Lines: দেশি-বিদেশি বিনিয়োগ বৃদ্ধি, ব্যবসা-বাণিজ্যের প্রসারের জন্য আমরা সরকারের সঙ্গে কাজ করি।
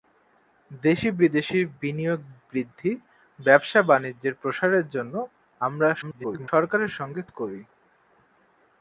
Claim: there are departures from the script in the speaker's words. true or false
true